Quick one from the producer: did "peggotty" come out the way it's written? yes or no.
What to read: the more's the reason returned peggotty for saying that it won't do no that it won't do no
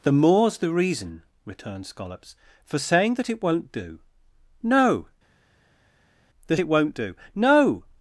no